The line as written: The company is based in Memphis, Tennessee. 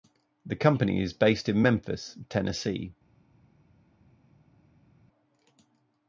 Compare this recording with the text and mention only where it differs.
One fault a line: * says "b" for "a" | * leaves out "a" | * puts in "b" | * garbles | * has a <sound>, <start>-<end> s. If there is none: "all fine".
all fine